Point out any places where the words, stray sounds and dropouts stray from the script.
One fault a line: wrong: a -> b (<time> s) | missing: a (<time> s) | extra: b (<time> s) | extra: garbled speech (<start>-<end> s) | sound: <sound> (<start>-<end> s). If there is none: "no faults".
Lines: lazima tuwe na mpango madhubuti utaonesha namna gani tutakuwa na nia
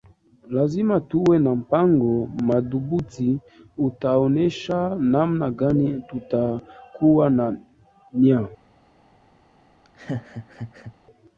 sound: laugh (9.8-10.9 s)